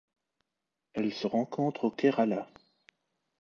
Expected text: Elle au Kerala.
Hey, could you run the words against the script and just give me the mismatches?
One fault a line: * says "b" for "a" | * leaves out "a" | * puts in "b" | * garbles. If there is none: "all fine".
* puts in "se rencontre"